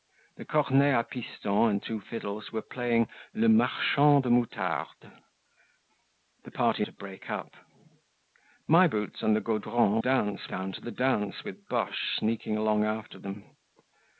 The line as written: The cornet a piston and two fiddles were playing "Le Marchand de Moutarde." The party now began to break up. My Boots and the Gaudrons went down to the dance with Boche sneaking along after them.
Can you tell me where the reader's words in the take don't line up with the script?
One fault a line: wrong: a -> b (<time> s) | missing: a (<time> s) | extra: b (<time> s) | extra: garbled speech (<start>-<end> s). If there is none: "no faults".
missing: now began (6.8 s)
wrong: went -> dance (10.0 s)